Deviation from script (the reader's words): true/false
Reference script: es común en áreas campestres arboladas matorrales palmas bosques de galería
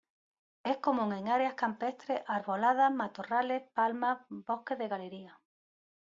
false